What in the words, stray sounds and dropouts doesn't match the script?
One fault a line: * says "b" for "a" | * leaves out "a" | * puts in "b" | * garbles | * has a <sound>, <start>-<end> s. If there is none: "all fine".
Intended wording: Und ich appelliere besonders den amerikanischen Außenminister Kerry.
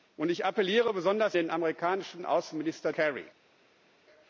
all fine